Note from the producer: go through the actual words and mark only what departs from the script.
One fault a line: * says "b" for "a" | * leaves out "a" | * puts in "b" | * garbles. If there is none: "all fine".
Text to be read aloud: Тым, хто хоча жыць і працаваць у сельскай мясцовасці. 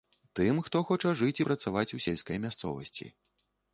all fine